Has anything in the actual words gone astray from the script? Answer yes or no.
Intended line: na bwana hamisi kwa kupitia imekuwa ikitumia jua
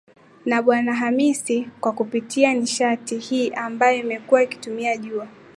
yes